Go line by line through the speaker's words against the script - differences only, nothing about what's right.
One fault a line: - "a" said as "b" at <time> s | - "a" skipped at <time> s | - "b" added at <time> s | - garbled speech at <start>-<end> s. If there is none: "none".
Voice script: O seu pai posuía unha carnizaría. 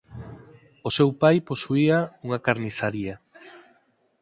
none